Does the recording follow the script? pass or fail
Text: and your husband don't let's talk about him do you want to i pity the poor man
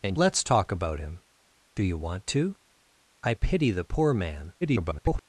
fail